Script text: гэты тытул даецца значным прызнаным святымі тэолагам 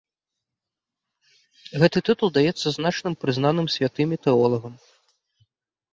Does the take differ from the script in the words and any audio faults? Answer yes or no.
no